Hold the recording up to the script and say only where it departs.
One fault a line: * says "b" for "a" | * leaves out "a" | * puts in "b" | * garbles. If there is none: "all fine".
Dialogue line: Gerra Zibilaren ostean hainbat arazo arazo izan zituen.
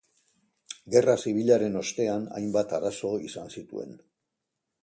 * leaves out "arazo"